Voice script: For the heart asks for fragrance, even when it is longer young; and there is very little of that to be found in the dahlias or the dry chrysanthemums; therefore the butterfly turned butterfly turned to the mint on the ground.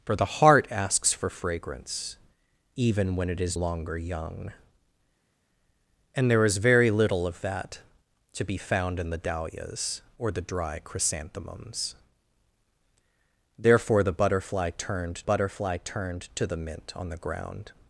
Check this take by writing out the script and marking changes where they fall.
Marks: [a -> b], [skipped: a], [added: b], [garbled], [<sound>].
For the heart asks for fragrance, even when it is longer young; and there is very little of that to be found in the dahlias or the dry chrysanthemums; therefore the butterfly turned butterfly turned to the mint on the ground.